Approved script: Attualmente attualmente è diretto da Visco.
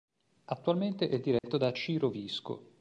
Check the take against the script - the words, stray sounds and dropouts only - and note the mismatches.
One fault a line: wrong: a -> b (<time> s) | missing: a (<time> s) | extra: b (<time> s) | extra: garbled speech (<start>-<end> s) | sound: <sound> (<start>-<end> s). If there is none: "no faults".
missing: attualmente (1.1 s)
sound: dropout (1.4-1.4 s)
extra: Ciro (1.7 s)